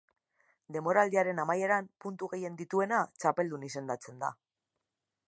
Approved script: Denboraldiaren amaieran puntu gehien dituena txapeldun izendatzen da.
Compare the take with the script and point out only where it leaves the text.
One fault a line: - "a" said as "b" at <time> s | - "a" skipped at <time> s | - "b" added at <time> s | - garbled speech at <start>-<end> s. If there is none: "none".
none